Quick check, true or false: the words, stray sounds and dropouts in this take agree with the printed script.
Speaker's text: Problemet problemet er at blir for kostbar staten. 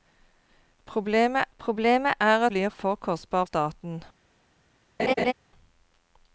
false